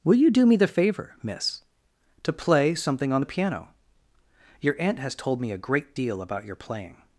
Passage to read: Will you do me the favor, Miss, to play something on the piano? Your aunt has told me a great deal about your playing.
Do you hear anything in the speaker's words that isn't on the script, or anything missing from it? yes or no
no